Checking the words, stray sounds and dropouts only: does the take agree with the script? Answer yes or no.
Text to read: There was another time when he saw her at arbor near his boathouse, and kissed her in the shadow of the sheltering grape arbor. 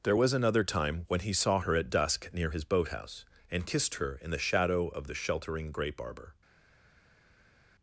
no